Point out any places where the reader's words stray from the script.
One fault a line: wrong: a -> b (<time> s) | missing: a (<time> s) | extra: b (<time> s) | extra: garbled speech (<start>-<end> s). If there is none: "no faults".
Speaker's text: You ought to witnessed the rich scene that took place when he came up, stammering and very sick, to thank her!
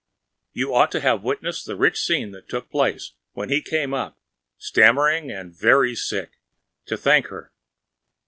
extra: have (1.0 s)